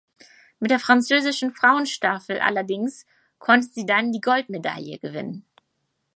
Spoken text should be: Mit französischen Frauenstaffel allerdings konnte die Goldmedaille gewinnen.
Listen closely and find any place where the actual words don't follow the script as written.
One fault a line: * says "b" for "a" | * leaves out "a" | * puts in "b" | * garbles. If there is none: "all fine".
* puts in "der"
* puts in "sie dann"